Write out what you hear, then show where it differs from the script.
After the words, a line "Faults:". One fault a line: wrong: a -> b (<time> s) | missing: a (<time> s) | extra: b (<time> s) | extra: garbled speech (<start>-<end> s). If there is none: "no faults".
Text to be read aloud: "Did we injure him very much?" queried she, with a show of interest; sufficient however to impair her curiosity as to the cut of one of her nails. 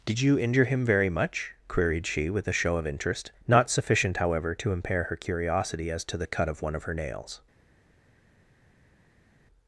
"Did you injure him very much?" queried she, with a show of interest; not sufficient however to impair her curiosity as to the cut of one of her nails.
Faults:
wrong: we -> you (0.2 s)
extra: not (3.5 s)